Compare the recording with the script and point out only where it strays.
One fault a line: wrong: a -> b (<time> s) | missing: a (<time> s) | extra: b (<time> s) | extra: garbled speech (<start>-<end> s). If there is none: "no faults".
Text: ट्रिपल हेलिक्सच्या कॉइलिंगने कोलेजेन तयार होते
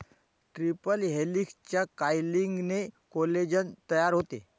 no faults